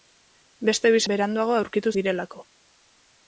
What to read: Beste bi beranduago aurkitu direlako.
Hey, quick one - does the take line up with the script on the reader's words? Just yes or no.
yes